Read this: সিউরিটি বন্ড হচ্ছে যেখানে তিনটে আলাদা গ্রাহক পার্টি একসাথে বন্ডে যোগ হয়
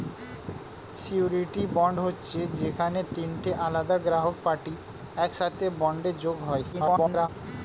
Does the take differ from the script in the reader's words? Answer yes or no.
yes